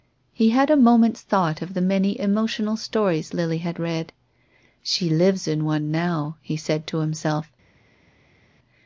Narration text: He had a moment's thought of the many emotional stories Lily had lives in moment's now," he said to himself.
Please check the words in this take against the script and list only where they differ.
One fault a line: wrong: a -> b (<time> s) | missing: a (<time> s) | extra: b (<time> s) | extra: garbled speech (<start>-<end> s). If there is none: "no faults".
extra: read She (3.8 s)
wrong: moment's -> one (5.7 s)